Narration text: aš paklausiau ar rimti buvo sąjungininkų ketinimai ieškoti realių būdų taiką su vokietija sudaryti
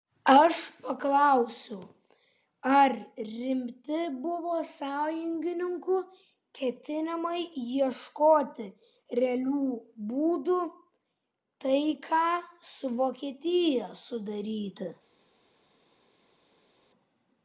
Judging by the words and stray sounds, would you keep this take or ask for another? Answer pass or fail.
pass